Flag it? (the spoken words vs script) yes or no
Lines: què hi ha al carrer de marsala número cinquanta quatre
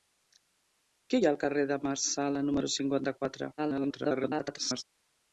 yes